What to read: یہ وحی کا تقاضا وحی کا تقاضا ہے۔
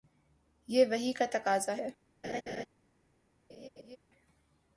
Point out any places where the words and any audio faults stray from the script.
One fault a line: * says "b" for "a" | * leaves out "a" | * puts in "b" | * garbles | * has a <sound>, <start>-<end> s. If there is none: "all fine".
* leaves out "وحی کا تقاضا"
* has a laugh, 2.2-2.7 s
* has a laugh, 3.5-4.0 s